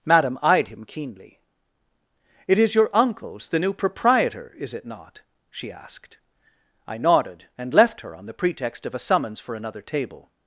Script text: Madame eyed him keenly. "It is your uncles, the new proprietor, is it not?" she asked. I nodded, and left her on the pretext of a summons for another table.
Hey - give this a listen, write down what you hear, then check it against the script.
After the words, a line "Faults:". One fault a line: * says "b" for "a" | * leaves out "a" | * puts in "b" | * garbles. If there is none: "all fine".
Madame eyed him keenly. "It is your uncles, the new proprietor, is it not?" she asked. I nodded, and left her on the pretext of a summons for another table.
Faults:
all fine